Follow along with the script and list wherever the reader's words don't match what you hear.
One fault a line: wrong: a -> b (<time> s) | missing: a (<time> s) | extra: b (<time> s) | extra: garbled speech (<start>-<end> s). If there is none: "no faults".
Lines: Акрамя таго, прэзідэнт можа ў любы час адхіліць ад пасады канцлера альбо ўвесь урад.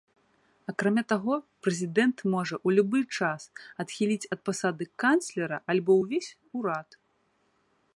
no faults